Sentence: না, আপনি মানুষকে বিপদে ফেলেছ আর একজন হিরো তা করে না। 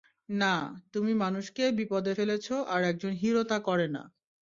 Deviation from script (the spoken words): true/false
true